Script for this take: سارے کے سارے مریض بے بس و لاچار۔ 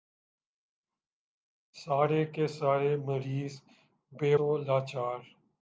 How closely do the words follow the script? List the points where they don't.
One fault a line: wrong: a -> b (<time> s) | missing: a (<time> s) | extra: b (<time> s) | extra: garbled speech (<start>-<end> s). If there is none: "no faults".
missing: بس (4.3 s)